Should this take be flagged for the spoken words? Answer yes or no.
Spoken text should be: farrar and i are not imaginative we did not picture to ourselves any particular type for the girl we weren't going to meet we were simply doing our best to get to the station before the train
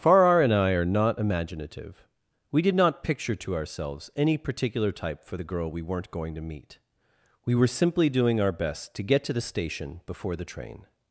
no